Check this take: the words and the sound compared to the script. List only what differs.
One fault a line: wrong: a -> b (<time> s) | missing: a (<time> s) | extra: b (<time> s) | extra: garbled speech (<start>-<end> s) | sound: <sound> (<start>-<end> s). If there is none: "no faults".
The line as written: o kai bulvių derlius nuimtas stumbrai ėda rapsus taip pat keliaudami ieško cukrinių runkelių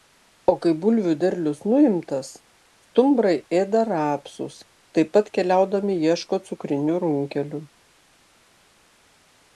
no faults